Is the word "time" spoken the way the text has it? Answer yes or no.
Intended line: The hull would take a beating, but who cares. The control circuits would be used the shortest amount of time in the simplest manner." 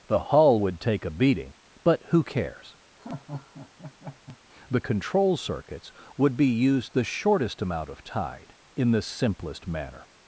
no